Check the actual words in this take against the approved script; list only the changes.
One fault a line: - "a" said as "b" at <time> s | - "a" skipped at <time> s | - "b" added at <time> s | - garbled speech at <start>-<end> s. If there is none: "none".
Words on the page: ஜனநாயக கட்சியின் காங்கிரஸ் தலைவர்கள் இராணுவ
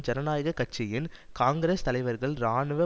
none